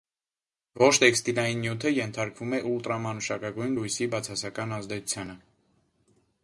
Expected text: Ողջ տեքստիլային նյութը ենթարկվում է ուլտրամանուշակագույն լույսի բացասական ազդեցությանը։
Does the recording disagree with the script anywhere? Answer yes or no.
no